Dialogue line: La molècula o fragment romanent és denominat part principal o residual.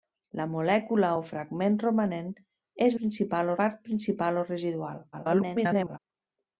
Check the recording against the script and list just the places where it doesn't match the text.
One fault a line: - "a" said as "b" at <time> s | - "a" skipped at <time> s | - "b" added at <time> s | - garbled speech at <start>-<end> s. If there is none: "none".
- "denominat" said as "principal" at 3.0 s
- garbled speech at 5.1-6.0 s